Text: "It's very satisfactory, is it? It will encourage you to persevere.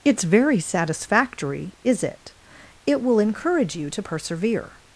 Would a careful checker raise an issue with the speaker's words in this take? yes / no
no